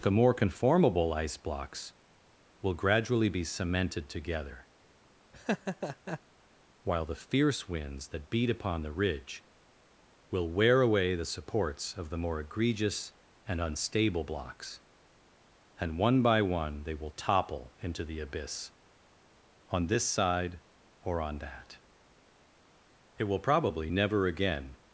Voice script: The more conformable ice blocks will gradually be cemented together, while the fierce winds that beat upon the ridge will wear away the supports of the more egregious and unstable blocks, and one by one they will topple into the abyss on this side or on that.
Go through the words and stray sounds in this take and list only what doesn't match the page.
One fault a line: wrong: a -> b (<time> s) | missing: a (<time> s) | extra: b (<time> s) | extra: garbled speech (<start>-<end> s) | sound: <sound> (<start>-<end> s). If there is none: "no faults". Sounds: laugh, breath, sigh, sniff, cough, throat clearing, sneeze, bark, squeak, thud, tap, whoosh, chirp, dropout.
sound: laugh (5.3-6.2 s)
extra: It will probably never again (23.2 s)